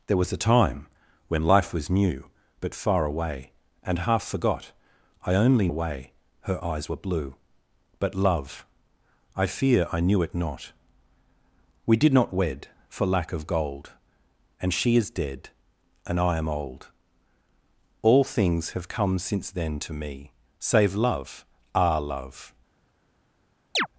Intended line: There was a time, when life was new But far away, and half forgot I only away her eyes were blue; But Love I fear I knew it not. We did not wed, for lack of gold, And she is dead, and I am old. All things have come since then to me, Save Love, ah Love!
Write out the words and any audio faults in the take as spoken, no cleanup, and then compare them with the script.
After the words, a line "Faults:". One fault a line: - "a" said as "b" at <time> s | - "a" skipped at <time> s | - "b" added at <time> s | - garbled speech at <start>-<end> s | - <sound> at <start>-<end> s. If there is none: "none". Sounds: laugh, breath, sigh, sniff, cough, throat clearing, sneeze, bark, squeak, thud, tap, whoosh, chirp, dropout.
There was a time, when life was new But far away, and half forgot I only away her eyes were blue; But Love I fear I knew it not. We did not wed, for lack of gold, And she is dead, and I am old. All things have come since then to me, Save Love, ah Love!
Faults:
- chirp at 23.7-23.9 s